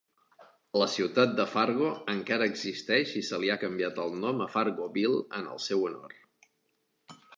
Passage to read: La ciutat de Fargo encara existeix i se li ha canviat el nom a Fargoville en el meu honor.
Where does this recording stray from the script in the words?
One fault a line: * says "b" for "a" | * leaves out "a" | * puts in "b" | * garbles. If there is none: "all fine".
* says "seu" for "meu"